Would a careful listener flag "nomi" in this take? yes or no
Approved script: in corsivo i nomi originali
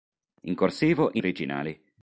yes